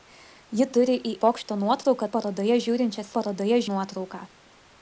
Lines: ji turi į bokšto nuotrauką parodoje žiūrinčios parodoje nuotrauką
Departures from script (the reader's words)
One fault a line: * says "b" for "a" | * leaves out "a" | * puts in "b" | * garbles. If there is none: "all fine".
all fine